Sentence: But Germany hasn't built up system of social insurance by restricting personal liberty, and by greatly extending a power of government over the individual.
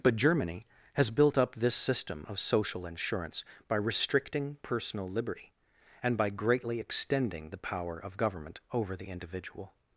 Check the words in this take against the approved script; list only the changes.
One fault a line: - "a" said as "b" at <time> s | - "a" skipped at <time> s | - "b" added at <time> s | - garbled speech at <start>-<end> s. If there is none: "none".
- "hasn't" said as "has" at 0.9 s
- "this" added at 1.5 s
- "a" said as "the" at 7.5 s